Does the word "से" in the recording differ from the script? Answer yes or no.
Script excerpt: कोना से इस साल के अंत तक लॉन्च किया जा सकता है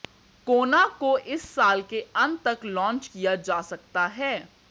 yes